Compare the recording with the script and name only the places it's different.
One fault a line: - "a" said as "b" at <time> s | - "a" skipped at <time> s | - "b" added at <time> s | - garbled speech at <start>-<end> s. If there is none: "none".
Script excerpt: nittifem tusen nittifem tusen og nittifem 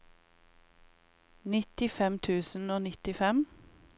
- "nittifem tusen" skipped at 2.7 s